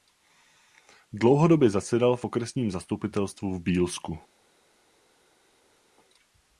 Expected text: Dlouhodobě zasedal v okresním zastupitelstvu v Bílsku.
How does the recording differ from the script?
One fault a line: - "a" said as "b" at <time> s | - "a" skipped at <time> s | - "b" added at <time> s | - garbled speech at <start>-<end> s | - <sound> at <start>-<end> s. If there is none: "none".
none